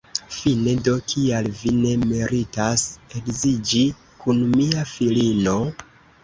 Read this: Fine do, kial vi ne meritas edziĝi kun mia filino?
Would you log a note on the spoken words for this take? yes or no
no